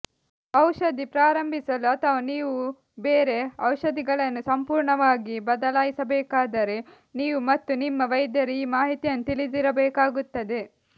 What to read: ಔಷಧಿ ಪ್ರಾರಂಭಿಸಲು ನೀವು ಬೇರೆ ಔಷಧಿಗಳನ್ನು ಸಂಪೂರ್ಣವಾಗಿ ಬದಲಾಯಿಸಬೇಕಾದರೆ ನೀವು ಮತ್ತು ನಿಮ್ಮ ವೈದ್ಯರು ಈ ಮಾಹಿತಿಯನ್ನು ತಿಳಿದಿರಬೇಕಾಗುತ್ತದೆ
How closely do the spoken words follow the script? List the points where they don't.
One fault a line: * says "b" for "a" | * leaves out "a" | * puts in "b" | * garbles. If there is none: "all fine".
* puts in "ಅಥವಾ"